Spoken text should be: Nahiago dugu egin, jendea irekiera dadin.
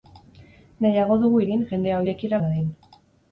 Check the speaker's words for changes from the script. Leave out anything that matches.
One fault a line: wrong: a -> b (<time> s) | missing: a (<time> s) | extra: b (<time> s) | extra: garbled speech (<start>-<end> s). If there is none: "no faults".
no faults